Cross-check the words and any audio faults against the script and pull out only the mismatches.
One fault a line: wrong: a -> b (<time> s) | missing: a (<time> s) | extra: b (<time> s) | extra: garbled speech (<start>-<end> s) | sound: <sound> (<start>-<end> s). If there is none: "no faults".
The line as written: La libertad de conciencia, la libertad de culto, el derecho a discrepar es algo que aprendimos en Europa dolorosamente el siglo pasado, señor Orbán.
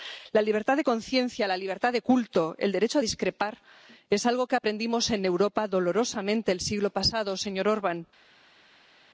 no faults